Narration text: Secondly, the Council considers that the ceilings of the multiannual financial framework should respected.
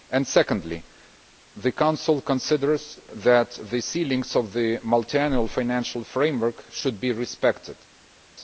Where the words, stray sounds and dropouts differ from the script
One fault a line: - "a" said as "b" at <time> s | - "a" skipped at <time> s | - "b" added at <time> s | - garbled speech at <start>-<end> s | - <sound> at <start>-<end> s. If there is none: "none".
- "be" added at 7.0 s